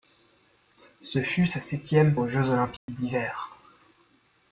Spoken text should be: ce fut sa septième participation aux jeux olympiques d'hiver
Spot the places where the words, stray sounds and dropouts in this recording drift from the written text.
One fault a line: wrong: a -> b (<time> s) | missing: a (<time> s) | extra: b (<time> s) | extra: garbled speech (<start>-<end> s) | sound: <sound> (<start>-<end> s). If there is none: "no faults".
missing: participation (2.1 s)
sound: dropout (2.8-2.9 s)